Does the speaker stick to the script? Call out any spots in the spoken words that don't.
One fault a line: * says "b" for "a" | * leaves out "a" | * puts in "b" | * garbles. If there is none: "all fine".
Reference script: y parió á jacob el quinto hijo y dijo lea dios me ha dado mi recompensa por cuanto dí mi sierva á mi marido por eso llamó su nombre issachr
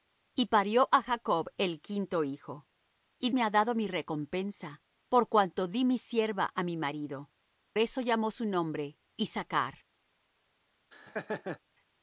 * leaves out "dijo lea dios"
* leaves out "por"